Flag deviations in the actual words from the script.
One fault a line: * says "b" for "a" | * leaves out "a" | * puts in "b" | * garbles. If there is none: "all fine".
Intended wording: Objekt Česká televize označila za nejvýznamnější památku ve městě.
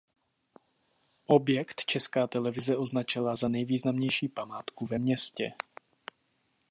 all fine